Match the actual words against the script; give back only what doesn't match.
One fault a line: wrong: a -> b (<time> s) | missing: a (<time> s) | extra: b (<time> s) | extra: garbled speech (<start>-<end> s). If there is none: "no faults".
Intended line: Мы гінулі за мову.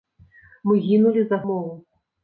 no faults